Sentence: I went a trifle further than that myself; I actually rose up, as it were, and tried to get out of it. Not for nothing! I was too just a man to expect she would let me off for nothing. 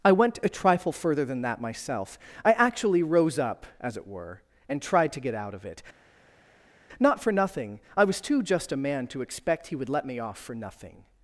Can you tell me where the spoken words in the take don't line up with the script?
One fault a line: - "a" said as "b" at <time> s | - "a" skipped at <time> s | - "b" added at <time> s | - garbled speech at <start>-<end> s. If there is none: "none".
- "she" said as "he" at 9.7 s